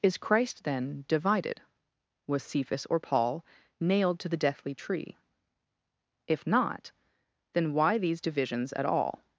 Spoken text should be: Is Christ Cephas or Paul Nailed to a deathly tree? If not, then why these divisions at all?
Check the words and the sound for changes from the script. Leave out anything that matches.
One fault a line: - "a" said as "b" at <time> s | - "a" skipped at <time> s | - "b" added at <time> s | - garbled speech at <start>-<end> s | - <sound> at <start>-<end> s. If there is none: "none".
- "then divided Was" added at 0.6 s
- "a" said as "the" at 4.3 s